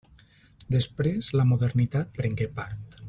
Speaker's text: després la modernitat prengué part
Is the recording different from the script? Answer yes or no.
no